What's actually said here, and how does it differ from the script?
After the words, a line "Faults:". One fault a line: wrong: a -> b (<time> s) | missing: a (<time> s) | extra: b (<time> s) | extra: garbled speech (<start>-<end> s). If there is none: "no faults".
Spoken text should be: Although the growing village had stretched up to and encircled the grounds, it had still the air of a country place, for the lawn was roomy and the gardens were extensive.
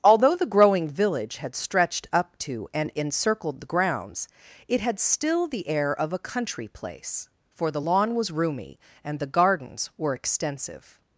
Although the growing village had stretched up to and encircled the grounds, it had still the air of a country place, for the lawn was roomy and the gardens were extensive.
Faults:
no faults